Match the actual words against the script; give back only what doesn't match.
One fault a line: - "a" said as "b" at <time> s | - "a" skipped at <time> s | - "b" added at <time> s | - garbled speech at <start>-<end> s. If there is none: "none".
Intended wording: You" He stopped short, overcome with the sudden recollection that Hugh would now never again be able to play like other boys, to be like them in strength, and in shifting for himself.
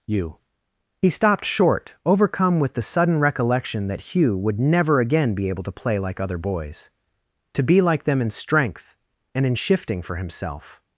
- "now" skipped at 4.6 s